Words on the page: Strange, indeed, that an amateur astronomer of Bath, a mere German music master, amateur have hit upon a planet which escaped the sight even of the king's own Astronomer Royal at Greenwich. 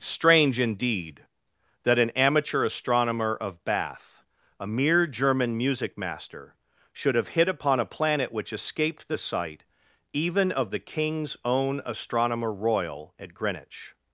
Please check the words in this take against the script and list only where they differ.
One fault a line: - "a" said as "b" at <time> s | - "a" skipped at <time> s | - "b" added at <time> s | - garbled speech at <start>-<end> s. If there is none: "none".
- "amateur" said as "should" at 6.9 s